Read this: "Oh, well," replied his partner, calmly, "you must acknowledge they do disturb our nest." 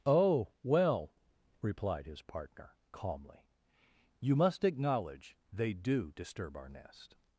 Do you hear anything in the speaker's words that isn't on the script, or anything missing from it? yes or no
no